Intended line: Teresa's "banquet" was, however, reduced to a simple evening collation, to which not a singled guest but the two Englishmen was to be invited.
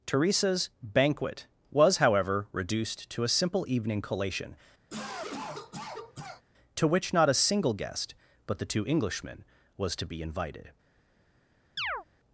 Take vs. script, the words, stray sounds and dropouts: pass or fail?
fail